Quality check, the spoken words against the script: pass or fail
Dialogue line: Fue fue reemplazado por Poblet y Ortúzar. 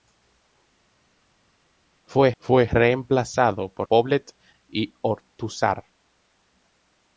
pass